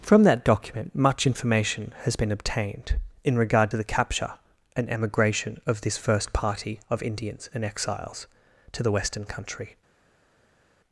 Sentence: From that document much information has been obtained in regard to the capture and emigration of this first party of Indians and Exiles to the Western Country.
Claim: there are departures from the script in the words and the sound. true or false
false